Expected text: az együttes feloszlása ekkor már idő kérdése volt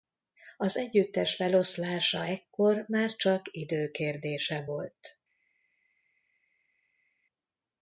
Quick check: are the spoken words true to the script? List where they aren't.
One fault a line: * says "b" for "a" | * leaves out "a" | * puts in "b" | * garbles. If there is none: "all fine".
* puts in "csak"